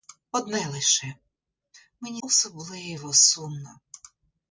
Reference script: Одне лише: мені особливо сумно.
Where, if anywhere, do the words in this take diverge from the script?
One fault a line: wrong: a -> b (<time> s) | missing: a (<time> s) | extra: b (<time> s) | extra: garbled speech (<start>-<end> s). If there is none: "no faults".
no faults